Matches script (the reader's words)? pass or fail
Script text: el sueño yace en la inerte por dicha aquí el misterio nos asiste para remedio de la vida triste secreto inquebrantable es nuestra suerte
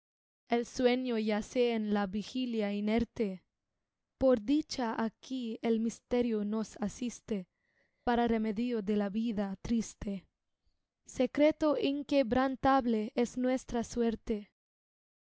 fail